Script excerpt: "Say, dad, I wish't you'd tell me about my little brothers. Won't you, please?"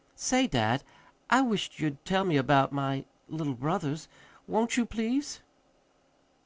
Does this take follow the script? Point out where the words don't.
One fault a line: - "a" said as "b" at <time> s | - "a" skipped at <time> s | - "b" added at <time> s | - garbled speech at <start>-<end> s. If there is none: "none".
none